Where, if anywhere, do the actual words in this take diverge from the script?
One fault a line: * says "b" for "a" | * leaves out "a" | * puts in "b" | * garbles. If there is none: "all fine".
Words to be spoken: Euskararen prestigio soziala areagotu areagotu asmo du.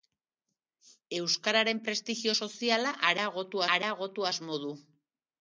all fine